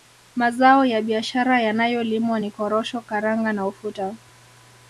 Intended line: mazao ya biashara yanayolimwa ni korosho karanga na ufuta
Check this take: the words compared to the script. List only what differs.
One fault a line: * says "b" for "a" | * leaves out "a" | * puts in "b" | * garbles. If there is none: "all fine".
all fine